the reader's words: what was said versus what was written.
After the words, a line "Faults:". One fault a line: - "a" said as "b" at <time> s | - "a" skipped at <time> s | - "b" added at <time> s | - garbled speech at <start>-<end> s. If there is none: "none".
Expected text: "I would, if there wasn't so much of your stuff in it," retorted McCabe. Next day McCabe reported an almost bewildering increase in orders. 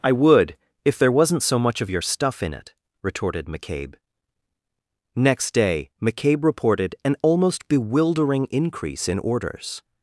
"I would, if there wasn't so much of your stuff in it," retorted McCabe. Next day McCabe reported an almost bewildering increase in orders.
Faults:
none